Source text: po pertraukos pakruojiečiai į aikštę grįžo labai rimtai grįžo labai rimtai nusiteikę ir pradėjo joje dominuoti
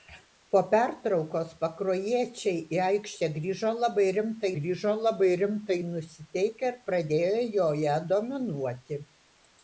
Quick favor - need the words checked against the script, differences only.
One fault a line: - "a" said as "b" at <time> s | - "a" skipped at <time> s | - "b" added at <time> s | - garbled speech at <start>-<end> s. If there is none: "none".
none